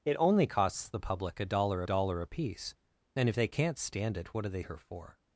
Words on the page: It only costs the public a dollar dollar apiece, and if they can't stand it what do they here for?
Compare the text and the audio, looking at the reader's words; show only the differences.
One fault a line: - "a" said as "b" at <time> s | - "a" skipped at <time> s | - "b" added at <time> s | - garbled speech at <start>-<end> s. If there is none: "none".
none